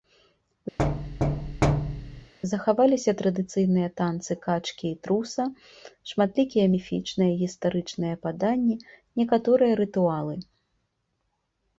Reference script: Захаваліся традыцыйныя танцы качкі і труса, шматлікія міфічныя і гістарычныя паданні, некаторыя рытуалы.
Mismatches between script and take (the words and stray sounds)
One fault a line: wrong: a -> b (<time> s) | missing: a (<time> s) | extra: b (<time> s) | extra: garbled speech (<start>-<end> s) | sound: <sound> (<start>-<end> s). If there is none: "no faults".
sound: thud (0.8-2.3 s)